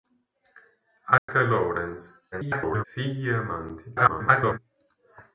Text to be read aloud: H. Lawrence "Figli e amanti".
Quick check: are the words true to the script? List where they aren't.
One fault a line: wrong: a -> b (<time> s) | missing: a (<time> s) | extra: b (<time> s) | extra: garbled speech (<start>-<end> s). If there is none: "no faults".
extra: garbled speech (2.3-2.8 s)
extra: garbled speech (3.9-4.6 s)